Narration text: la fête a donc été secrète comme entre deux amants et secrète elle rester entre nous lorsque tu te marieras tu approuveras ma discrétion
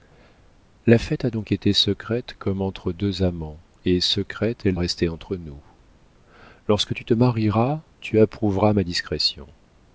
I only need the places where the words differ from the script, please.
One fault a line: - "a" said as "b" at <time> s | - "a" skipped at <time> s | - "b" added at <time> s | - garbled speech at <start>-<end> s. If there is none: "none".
none